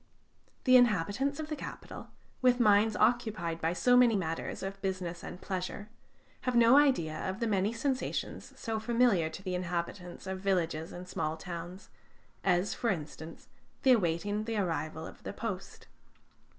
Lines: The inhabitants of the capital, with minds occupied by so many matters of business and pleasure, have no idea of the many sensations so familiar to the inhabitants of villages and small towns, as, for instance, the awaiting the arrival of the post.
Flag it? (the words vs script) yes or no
no